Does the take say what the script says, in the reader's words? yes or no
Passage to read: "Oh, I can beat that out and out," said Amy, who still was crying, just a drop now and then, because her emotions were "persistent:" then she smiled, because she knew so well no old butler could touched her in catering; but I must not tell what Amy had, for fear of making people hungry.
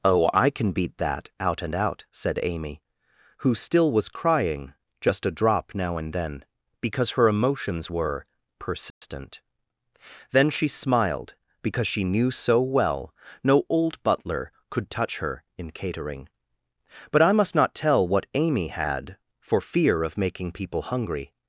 no